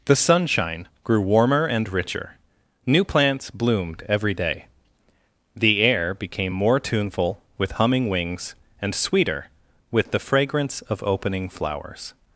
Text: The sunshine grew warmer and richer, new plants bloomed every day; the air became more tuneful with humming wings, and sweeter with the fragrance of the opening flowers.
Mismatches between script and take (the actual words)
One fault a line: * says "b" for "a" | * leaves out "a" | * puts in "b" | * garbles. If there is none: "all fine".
* leaves out "the"